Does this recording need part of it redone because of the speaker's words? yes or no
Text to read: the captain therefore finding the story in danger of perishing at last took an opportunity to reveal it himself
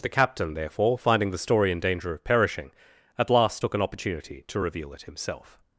no